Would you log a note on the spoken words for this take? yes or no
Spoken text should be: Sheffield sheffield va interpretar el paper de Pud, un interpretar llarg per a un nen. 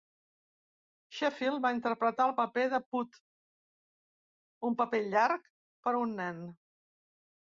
yes